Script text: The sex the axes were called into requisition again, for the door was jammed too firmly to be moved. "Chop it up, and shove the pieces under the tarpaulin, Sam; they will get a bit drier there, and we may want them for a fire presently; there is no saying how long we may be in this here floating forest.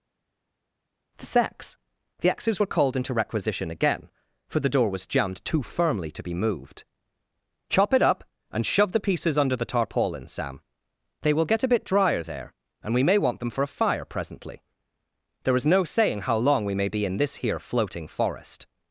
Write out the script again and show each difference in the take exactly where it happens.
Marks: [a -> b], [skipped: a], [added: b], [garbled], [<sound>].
The sex the axes were called into requisition again, for the door was jammed too firmly to be moved. "Chop it up, and shove the pieces under the tarpaulin, Sam; they will get a bit drier there, and we may want them for a fire presently; there is no saying how long we may be in this here floating forest.